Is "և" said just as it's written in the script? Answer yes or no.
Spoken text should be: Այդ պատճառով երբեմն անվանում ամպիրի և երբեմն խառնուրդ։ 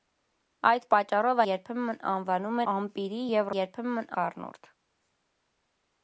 yes